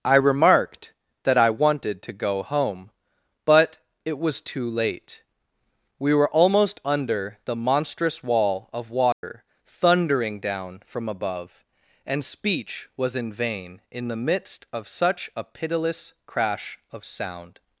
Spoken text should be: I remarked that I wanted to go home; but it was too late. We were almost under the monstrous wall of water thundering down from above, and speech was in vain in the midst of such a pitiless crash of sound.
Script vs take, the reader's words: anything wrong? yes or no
no